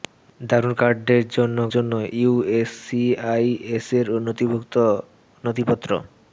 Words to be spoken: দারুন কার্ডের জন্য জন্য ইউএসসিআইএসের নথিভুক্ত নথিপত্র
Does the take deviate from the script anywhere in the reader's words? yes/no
no